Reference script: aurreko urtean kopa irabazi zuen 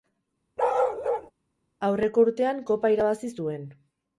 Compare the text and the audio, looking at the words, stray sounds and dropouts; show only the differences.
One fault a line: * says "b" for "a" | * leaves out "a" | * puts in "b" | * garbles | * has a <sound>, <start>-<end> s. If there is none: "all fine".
* has a bark, 0.6-1.3 s